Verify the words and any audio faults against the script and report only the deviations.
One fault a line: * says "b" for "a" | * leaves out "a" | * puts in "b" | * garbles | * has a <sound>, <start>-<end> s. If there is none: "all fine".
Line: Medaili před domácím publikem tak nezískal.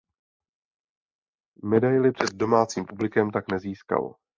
all fine